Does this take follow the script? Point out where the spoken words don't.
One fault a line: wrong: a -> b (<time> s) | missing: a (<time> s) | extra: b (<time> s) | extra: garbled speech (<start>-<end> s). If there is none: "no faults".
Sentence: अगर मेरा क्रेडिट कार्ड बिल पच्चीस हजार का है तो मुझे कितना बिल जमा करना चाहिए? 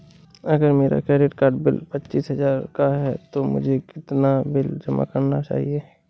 no faults